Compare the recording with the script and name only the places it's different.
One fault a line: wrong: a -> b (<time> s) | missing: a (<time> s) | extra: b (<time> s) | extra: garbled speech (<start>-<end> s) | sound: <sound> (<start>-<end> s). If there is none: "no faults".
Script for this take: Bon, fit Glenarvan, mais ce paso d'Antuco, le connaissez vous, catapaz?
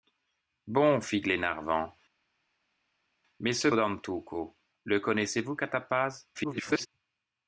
missing: paso (3.7 s)
extra: garbled speech (6.3-6.9 s)